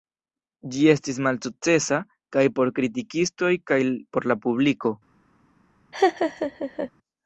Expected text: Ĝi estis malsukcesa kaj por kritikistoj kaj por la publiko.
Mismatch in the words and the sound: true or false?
true